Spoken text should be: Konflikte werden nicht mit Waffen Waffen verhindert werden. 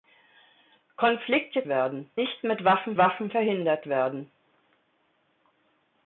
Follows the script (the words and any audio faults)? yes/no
yes